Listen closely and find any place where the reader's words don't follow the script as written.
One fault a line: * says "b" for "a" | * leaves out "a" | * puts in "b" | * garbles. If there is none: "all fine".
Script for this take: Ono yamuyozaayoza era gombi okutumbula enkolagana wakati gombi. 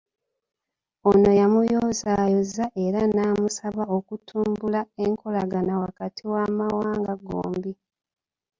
* says "namusaba" for "gombi"
* puts in "w'amawanga"